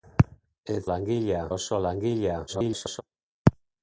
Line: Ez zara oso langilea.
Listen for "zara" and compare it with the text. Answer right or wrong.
wrong